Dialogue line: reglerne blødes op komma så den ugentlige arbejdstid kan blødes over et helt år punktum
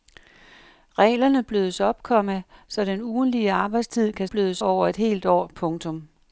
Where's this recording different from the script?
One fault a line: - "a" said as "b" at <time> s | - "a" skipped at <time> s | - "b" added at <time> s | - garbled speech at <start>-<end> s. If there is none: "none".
none